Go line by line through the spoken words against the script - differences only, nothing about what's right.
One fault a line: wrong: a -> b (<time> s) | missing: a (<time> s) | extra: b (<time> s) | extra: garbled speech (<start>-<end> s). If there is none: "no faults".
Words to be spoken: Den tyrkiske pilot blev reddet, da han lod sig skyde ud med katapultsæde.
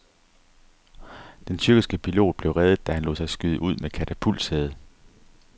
no faults